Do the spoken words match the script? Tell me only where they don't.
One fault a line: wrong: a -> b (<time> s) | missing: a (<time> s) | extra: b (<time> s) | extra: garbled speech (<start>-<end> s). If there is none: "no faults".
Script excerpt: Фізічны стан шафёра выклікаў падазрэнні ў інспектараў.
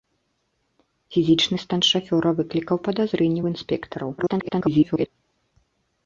extra: garbled speech (4.2-5.1 s)